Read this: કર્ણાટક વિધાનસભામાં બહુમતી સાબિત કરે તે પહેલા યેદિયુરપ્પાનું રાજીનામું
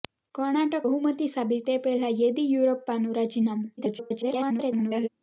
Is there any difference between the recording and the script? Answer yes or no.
yes